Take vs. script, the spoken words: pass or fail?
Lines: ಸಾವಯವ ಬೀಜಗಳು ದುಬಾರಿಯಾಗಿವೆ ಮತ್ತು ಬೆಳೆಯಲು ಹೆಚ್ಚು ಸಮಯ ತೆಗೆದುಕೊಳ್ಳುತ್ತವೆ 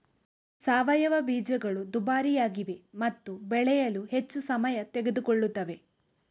pass